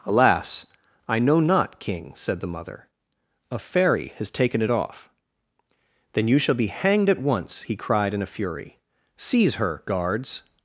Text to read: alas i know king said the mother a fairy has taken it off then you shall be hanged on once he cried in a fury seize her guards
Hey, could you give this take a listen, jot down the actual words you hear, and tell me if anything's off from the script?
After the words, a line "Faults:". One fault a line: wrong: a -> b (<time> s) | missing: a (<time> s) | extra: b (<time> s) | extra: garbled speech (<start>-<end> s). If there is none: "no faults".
alas i know not king said the mother a fairy has taken it off then you shall be hanged at once he cried in a fury seize her guards
Faults:
extra: not (1.4 s)
wrong: on -> at (7.1 s)